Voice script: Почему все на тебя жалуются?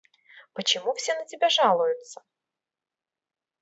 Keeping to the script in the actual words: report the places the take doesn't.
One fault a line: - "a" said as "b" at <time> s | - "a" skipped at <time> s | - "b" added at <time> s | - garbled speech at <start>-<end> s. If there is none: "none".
none